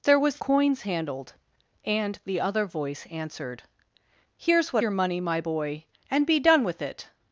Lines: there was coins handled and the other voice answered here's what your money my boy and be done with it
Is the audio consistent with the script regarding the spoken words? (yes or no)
yes